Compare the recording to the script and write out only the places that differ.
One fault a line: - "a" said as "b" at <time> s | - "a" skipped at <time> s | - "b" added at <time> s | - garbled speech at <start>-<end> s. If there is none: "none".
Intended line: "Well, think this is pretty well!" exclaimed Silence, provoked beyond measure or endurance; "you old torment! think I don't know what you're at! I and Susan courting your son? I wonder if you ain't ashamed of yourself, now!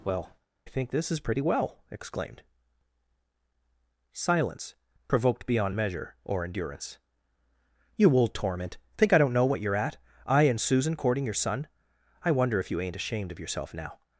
none